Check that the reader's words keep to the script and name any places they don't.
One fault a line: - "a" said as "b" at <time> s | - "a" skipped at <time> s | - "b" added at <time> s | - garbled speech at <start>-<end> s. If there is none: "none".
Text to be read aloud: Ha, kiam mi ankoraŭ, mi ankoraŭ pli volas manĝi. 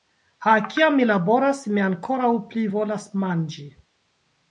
- "ankoraŭ" said as "laboras" at 1.1 s